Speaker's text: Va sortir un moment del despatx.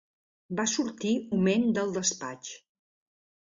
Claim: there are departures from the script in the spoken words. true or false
true